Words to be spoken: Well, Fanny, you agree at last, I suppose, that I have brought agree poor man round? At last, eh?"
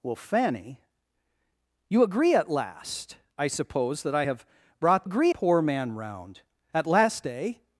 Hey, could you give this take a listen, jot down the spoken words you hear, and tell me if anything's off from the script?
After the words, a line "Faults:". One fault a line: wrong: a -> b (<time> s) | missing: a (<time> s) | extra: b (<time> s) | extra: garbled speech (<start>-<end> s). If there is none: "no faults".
Well, Fanny, you agree at last, I suppose, that I have brought agree poor man round? At last, eh?"
Faults:
no faults